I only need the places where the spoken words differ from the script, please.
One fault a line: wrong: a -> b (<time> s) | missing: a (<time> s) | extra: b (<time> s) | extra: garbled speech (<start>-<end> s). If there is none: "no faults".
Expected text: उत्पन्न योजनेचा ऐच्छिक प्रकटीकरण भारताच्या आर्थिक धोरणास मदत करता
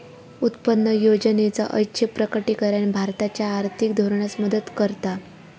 no faults